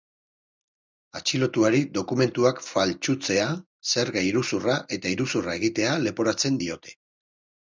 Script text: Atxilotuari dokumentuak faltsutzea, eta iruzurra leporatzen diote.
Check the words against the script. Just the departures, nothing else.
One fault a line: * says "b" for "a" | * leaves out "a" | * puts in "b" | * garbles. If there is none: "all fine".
* puts in "zerga iruzurra"
* puts in "egitea"